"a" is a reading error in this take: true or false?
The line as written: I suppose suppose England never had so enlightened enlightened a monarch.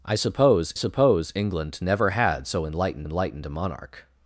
false